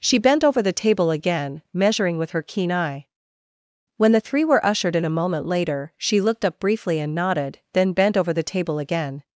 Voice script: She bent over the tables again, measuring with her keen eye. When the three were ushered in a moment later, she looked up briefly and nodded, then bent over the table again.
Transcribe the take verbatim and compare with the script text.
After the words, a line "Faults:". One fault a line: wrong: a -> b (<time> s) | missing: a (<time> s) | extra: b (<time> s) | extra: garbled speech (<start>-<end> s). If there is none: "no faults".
She bent over the table again, measuring with her keen eye. When the three were ushered in a moment later, she looked up briefly and nodded, then bent over the table again.
Faults:
wrong: tables -> table (0.7 s)